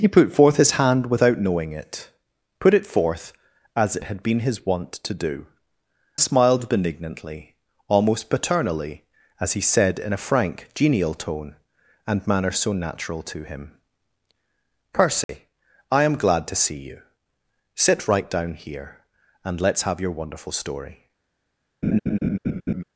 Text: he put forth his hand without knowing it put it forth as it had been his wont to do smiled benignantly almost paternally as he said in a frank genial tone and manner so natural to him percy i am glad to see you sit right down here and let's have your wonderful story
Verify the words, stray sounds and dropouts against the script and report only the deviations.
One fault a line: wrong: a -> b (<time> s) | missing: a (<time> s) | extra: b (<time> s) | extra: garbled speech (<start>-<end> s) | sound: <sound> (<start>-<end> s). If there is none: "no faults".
sound: dropout (15.2-15.3 s)
sound: laugh (21.8-22.8 s)